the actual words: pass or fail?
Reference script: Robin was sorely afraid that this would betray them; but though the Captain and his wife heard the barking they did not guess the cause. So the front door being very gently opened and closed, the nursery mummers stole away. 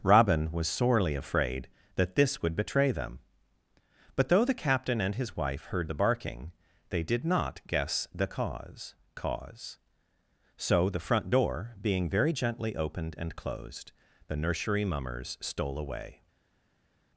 fail